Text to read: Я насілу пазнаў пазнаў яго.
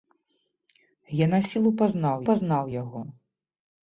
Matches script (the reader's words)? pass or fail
pass